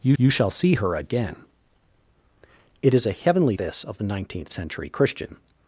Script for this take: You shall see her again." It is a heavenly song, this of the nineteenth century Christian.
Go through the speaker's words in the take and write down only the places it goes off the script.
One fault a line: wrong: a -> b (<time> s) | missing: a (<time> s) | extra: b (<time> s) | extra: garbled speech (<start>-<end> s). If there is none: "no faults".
extra: you (0.2 s)
missing: song (3.6 s)